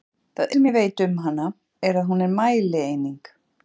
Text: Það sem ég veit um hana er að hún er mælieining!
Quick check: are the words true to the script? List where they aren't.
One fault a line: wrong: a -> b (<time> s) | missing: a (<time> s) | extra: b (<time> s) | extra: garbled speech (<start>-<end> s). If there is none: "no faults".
no faults